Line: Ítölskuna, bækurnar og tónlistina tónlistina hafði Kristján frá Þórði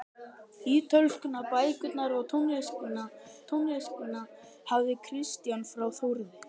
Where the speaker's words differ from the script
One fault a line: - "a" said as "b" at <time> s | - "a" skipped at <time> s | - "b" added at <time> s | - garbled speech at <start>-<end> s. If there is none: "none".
none